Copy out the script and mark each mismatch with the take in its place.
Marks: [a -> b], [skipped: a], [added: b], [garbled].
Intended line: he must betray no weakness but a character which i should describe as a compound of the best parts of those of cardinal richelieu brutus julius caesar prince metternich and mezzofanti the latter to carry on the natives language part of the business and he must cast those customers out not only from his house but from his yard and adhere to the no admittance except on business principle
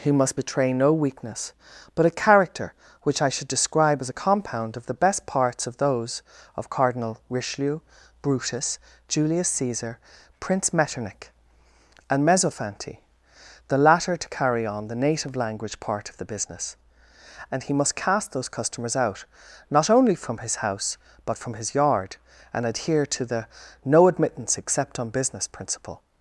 he must betray no weakness but a character which i should describe as a compound of the best parts of those of cardinal richelieu brutus julius caesar prince metternich and mezzofanti the latter to carry on the [natives -> native] language part of the business and he must cast those customers out not only from his house but from his yard and adhere to the no admittance except on business principle